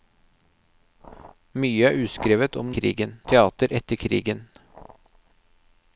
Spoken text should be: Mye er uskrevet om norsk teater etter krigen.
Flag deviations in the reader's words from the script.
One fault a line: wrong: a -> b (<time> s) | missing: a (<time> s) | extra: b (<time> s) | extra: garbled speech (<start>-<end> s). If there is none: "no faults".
wrong: norsk -> krigen (2.8 s)